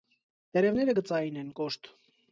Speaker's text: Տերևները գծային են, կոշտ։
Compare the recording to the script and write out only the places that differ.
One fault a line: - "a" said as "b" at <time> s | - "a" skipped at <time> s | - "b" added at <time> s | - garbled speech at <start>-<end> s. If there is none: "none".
none